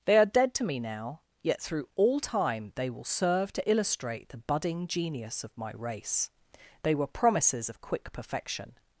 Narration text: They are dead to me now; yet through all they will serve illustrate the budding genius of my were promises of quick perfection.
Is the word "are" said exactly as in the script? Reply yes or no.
yes